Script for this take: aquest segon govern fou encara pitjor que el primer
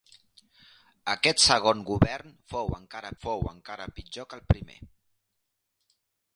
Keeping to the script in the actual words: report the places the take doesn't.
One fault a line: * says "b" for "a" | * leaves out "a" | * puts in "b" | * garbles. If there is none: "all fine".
* puts in "fou encara"